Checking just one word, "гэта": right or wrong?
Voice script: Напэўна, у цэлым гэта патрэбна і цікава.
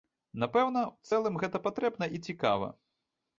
right